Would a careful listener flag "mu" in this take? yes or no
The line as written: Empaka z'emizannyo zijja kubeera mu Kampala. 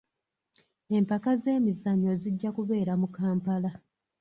no